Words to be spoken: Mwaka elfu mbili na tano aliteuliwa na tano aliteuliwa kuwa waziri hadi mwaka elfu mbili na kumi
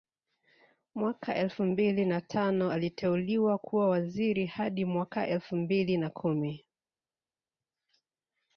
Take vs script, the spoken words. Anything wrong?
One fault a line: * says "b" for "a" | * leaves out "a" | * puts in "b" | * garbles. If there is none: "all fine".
* leaves out "na tano aliteuliwa"